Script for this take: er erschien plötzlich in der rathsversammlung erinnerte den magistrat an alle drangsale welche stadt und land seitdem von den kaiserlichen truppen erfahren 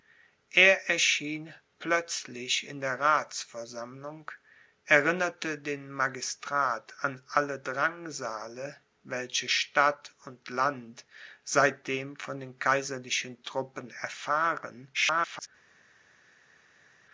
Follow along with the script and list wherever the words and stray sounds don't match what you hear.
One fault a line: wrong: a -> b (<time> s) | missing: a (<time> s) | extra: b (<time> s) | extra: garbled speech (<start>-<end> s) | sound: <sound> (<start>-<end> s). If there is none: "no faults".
extra: garbled speech (14.9-15.5 s)